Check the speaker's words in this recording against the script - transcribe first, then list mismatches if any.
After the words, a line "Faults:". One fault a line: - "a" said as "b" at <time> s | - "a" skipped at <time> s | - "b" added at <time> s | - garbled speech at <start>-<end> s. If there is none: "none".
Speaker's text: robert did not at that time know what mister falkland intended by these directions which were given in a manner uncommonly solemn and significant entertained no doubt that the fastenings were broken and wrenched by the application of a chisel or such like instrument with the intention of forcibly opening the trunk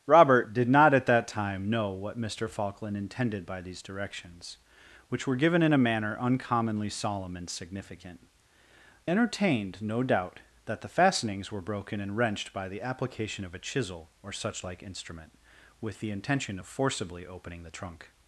robert did not at that time know what mister falkland intended by these directions which were given in a manner uncommonly solemn and significant entertained no doubt that the fastenings were broken and wrenched by the application of a chisel or such like instrument with the intention of forcibly opening the trunk
Faults:
none